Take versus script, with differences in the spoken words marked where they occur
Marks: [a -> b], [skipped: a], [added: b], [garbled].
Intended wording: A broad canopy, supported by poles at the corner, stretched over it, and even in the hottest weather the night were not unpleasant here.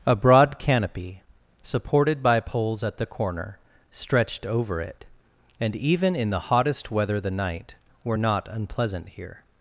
A broad canopy, supported by poles at the corner, stretched over it, and even in the hottest weather the night were not unpleasant here.